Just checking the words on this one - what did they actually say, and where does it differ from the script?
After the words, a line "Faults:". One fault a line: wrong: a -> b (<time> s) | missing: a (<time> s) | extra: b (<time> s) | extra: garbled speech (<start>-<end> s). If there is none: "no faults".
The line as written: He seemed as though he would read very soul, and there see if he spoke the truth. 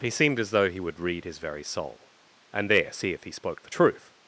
He seemed as though he would read his very soul, and there see if he spoke the truth.
Faults:
extra: his (1.2 s)